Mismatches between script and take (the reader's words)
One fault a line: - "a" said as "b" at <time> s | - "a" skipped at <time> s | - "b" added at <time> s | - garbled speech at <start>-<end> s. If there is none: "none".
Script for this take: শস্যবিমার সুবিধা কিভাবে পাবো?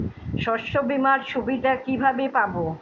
none